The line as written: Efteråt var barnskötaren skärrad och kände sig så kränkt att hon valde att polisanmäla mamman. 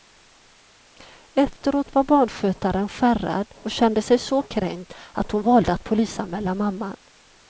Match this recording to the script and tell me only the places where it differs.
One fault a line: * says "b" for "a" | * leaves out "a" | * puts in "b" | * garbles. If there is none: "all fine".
all fine